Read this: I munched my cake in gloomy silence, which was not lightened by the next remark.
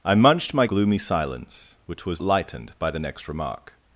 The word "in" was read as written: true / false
false